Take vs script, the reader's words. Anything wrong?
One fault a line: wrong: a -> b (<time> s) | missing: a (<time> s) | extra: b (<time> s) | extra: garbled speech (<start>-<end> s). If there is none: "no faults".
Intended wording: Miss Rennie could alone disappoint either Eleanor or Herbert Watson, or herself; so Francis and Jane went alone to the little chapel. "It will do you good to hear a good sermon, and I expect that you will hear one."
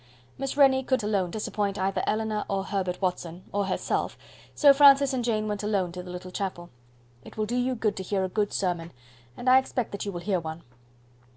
no faults